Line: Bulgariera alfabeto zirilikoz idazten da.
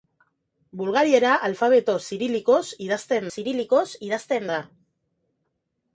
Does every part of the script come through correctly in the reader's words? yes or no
no